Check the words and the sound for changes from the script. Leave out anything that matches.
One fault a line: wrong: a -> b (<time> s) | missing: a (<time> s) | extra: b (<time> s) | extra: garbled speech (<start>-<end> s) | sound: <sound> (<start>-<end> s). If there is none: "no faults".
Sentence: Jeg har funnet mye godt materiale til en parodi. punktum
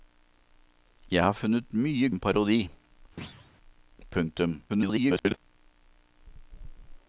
missing: godt materiale til (2.1 s)
sound: thud (3.2-3.5 s)
extra: garbled speech (4.7-5.4 s)